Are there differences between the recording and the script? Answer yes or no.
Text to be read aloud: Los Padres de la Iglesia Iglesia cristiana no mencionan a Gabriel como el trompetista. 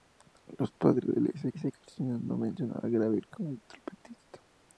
no